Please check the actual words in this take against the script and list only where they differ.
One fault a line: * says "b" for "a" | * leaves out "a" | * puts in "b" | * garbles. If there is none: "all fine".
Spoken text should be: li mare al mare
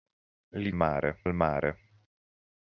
all fine